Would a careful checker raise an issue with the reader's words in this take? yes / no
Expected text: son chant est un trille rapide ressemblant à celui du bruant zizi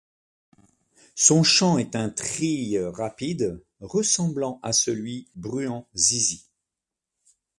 yes